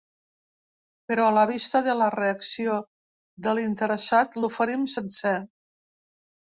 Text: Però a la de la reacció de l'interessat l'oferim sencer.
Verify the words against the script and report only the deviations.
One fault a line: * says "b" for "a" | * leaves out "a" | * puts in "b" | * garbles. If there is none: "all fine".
* puts in "vista"